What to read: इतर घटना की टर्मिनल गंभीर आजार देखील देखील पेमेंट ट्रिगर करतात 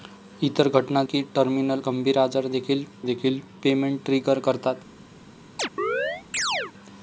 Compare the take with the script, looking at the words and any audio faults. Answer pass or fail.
fail